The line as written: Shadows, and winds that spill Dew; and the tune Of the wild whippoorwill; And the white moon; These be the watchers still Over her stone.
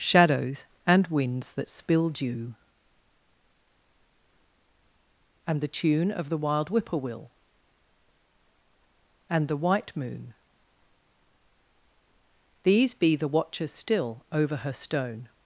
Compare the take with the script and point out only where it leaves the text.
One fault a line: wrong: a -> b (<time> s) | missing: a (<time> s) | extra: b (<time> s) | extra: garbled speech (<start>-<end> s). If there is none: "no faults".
no faults